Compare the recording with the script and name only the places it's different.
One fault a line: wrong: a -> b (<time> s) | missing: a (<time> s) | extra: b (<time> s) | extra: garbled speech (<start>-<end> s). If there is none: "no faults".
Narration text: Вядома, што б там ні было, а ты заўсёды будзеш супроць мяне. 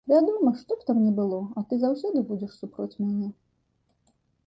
no faults